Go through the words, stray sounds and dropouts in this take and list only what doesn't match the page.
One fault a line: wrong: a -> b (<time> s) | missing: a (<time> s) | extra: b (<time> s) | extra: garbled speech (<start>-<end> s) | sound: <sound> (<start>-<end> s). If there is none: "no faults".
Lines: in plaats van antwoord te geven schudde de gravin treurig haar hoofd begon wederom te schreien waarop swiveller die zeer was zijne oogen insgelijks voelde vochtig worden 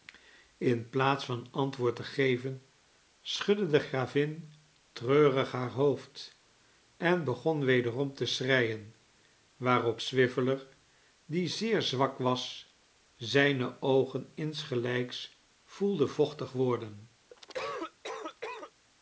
extra: en (7.0 s)
extra: zwak (11.8 s)
sound: cough (17.3-18.7 s)